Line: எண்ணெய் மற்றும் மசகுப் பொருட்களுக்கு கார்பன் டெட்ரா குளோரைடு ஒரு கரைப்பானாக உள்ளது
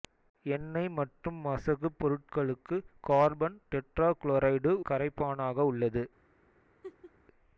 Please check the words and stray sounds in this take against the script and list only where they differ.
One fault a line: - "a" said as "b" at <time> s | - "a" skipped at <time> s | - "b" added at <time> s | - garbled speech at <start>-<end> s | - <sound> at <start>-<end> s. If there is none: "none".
- "ஒரு" skipped at 4.7 s
- laugh at 6.8-7.1 s